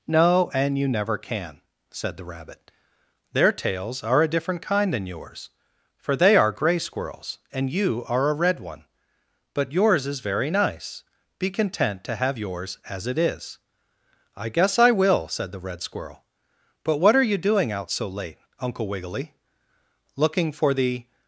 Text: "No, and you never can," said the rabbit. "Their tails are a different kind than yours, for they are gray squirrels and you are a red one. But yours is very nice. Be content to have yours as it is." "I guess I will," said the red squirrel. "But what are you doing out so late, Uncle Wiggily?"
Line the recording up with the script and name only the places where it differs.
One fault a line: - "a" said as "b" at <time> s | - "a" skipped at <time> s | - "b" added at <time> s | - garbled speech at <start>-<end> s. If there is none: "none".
- "Looking for the" added at 20.1 s